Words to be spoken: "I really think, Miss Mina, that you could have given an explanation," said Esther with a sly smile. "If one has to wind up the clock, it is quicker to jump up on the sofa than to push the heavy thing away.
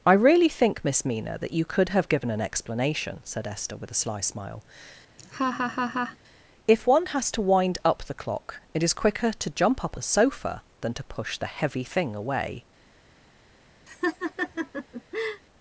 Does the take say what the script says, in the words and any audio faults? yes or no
no